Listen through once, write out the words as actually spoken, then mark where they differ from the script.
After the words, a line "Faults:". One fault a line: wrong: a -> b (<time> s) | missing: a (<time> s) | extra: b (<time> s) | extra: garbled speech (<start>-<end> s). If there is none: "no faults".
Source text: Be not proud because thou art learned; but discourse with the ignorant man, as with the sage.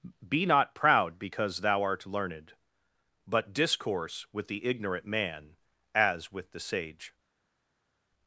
Be not proud because thou art learned; but discourse with the ignorant man, as with the sage.
Faults:
no faults